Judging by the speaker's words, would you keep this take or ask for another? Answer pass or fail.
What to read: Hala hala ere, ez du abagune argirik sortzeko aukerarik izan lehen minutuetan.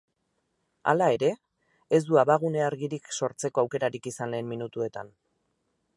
fail